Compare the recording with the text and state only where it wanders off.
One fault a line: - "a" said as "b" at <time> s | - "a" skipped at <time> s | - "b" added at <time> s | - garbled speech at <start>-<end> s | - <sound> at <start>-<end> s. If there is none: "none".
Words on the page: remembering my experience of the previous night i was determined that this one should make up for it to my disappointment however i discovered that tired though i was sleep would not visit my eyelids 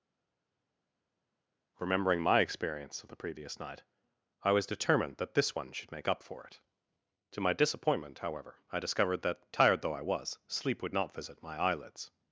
none